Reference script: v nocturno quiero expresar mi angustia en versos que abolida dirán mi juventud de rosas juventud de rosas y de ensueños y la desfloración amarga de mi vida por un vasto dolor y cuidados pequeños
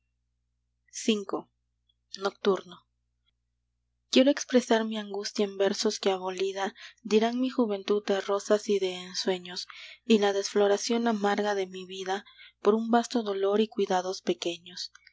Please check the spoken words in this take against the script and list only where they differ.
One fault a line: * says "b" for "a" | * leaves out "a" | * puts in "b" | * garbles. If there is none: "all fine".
* leaves out "juventud de rosas"